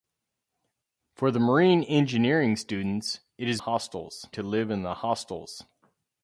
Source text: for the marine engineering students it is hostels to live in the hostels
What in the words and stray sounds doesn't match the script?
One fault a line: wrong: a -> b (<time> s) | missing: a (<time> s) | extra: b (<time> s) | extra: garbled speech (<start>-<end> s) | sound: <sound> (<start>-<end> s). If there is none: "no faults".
no faults